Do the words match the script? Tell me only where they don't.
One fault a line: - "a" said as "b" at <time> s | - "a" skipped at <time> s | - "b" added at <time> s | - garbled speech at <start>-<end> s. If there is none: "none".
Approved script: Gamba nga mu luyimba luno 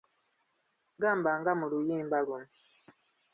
none